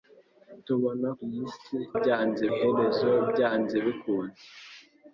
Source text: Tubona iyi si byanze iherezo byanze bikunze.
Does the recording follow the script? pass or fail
pass